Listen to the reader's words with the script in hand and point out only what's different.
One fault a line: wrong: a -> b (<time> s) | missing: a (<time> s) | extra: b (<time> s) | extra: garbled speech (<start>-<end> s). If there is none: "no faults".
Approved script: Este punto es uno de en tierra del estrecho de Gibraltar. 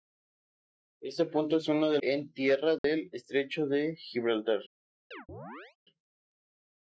no faults